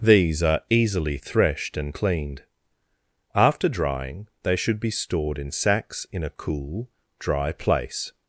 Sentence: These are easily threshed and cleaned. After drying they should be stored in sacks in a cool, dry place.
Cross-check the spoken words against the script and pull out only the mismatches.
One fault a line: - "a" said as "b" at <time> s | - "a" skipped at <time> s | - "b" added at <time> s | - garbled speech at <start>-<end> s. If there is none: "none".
none